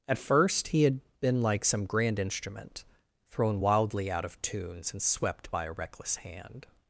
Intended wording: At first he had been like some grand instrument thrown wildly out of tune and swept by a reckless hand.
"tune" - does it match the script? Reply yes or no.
no